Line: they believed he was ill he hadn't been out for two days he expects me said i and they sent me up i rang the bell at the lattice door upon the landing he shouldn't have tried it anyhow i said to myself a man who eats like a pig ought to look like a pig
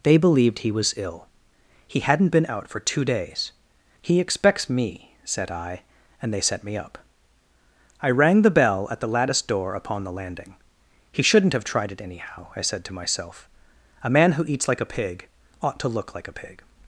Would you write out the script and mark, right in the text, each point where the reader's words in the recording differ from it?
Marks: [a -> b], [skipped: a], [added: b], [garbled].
they believed he was ill he hadn't been out for two days he expects me said i and they [sent -> set] me up i rang the bell at the lattice door upon the landing he shouldn't have tried it anyhow i said to myself a man who eats like a pig ought to look like a pig